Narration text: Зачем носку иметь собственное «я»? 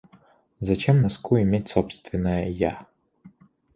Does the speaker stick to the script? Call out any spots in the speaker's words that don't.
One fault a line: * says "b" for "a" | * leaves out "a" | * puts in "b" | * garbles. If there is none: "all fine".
all fine